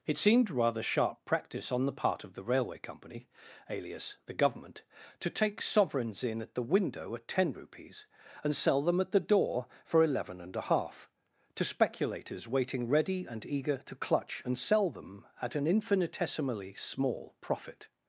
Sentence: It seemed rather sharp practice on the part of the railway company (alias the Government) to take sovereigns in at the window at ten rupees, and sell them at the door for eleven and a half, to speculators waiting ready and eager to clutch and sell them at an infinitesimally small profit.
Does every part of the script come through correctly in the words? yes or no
yes